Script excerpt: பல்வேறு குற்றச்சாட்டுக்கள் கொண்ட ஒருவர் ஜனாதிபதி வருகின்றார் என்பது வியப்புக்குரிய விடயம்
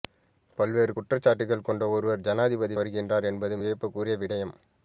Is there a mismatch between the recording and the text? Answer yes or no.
no